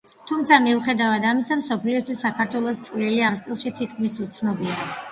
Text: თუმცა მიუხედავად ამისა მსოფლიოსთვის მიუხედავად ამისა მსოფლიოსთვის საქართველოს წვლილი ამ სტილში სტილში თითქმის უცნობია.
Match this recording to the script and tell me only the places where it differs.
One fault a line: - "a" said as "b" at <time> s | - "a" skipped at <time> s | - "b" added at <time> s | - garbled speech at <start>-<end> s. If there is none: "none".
- "მიუხედავად ამისა მსოფლიოსთვის" skipped at 2.2 s
- "სტილში" skipped at 3.8 s